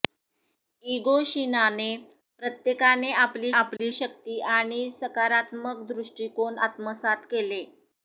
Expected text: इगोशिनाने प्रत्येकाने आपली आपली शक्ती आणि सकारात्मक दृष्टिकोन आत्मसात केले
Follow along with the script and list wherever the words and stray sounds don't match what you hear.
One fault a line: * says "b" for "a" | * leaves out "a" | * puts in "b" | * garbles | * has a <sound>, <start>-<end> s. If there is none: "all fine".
* has a dropout, 3.8-3.8 s